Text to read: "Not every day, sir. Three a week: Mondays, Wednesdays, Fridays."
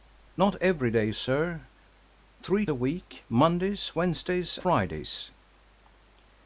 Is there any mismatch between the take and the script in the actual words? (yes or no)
no